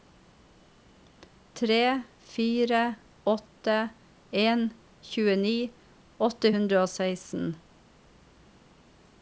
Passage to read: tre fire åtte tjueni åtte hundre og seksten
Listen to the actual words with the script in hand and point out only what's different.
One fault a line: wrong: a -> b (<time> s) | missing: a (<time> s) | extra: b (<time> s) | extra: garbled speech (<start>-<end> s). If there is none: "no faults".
extra: en (4.5 s)